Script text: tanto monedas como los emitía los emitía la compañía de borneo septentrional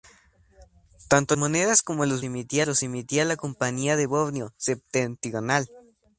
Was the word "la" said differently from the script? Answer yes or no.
no